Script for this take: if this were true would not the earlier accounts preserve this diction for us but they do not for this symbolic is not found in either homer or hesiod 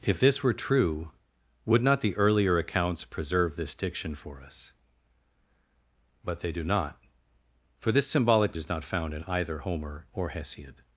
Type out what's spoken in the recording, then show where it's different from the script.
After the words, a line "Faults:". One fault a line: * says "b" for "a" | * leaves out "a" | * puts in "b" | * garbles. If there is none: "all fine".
if this were true would not the earlier accounts preserve this diction for us but they do not for this symbolic is not found in either homer or hesiod
Faults:
all fine